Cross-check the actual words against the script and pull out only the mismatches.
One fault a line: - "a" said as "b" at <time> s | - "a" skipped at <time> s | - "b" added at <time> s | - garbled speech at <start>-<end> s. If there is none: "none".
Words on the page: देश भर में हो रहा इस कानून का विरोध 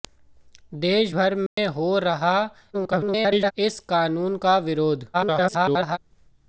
- garbled speech at 2.7-3.5 s
- garbled speech at 5.1-6.0 s